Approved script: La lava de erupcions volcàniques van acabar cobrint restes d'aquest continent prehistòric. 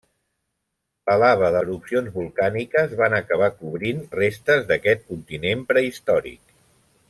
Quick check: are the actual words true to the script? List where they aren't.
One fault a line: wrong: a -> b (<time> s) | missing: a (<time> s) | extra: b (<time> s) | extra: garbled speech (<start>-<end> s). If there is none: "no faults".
no faults